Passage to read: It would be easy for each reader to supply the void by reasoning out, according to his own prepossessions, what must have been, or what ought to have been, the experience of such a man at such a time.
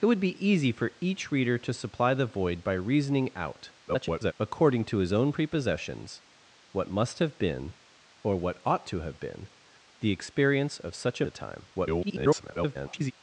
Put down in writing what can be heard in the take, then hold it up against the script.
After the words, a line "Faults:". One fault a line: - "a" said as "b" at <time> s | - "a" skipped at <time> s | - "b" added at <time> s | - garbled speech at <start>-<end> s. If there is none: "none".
It would be easy for each reader to supply the void by reasoning out, [garbled] according to his own prepossessions, what must have been, or what ought to have been, the experience of such a a time. [garbled]
Faults:
- garbled speech at 3.9-4.3 s
- "man at such" skipped at 11.3 s
- garbled speech at 11.7-13.1 s